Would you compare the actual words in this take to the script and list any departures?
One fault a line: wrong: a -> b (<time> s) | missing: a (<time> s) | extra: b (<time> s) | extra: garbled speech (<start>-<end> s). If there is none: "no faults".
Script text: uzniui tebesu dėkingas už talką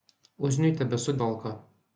missing: dėkingas už (1.2 s)